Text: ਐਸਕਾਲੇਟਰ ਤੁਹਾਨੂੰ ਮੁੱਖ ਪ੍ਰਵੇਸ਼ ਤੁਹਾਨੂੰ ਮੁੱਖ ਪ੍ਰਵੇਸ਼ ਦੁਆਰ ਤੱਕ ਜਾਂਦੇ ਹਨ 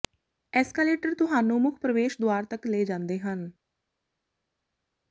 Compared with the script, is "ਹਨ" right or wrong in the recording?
right